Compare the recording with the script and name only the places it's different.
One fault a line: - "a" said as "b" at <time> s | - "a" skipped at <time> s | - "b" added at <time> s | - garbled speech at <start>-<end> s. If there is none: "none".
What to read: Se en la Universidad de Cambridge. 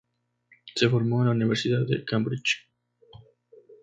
- "formó" added at 0.9 s